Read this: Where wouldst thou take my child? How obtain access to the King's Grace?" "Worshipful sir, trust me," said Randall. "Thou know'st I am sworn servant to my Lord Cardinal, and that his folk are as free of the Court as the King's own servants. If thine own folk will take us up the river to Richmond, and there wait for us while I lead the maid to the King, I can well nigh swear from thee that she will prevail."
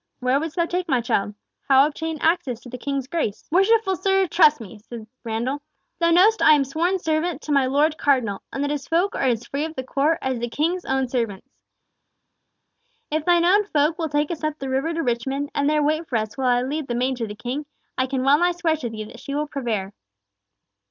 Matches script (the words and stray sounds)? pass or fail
fail